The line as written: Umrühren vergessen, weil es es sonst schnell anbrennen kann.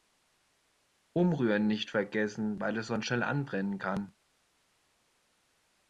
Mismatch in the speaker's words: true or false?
true